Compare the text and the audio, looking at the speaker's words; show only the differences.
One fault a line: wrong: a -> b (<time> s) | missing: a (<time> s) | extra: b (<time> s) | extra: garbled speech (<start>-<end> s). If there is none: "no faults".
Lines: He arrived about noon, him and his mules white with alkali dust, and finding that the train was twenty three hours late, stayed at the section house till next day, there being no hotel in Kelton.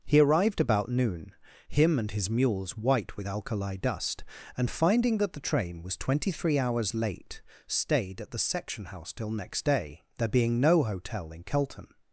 no faults